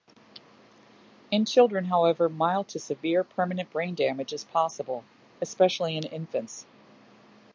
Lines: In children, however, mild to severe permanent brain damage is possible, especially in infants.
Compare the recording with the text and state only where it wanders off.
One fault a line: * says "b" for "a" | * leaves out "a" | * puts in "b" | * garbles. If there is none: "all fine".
all fine